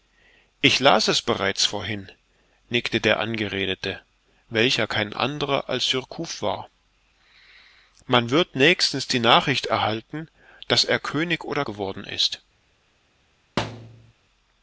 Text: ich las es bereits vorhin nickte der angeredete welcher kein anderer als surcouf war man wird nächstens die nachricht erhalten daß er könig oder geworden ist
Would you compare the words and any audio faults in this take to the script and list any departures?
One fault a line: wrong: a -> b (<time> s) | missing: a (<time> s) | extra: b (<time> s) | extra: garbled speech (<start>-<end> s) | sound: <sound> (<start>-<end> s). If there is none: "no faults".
sound: thud (13.6-14.1 s)